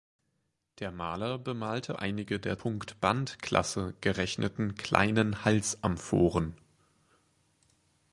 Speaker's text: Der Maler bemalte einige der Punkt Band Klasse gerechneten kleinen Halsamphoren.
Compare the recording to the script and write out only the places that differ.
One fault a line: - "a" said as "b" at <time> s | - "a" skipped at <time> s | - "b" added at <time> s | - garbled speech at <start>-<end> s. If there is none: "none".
none